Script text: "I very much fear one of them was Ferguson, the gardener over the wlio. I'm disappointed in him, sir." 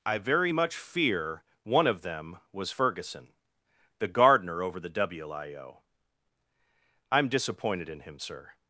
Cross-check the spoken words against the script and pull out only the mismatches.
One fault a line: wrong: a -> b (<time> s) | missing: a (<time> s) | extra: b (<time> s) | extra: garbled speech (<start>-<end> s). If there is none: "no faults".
no faults